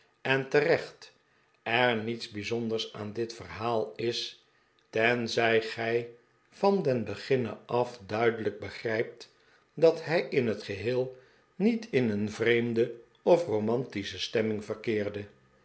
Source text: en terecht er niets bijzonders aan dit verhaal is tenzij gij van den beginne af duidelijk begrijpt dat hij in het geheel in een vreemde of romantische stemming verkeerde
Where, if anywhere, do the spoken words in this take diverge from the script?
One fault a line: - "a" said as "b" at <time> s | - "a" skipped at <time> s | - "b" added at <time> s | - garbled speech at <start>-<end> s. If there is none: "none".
- "niet" added at 11.5 s